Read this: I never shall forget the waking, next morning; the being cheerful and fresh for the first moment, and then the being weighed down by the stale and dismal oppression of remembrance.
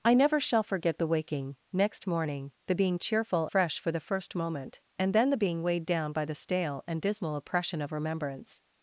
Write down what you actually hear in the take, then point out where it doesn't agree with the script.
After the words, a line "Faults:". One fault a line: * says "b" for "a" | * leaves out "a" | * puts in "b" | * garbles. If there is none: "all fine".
I never shall forget the waking, next morning; the being cheerful fresh for the first moment, and then the being weighed down by the stale and dismal oppression of remembrance.
Faults:
* leaves out "and"